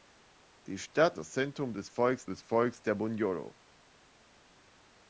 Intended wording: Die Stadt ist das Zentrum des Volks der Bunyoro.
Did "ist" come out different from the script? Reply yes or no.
yes